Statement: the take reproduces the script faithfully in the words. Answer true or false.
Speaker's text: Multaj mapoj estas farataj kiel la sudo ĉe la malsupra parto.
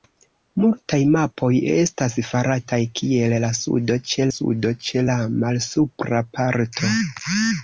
false